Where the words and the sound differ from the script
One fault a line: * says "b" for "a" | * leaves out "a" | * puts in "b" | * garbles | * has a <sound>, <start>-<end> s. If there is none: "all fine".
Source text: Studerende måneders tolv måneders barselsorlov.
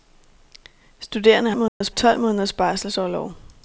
* has a dropout, 1.7-1.8 s